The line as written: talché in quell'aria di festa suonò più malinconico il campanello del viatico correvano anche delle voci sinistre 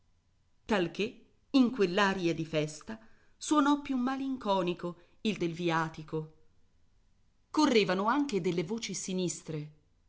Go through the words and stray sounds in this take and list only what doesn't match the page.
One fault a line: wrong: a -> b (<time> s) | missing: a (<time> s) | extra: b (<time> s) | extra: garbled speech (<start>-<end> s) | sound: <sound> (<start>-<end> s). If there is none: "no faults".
missing: campanello (5.4 s)